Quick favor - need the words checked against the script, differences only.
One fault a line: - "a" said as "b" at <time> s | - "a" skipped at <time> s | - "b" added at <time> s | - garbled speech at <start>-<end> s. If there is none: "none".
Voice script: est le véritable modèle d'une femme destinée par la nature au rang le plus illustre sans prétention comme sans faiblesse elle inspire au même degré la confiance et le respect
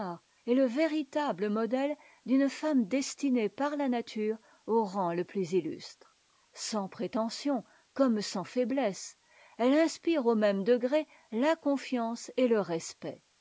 none